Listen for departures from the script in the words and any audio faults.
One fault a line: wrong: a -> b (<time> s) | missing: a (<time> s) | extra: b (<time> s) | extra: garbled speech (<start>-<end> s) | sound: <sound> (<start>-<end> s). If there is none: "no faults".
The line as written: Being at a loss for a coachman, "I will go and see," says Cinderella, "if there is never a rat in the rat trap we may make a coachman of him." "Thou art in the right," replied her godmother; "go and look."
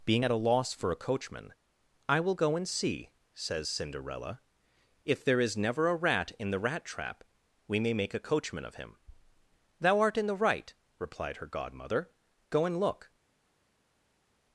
no faults